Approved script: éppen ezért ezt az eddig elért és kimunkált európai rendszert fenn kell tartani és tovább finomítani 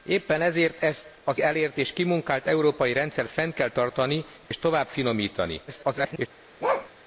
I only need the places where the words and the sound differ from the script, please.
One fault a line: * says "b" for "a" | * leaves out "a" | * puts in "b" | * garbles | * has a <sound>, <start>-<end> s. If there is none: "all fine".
* leaves out "eddig"
* has a dropout, 4.5-4.5 s
* garbles
* has a bark, 6.6-6.9 s